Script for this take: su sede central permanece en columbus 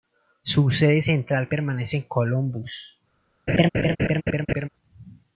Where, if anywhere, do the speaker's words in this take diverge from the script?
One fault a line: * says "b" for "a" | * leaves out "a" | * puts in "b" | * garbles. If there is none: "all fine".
all fine